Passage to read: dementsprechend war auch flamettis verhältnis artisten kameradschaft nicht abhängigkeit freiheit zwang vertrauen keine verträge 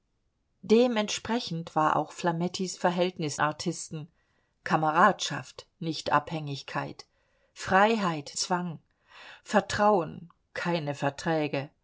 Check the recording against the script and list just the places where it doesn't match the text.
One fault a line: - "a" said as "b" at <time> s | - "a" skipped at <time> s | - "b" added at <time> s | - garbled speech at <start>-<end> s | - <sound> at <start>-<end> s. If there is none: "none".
none